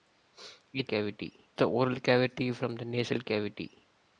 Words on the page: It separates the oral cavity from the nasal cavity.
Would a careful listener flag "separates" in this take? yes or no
yes